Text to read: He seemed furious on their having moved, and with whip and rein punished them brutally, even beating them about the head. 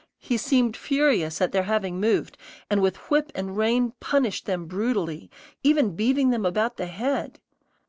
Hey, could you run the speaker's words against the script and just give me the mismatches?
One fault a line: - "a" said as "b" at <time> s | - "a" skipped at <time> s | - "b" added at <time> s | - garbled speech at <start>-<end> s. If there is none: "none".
- "on" said as "at" at 1.4 s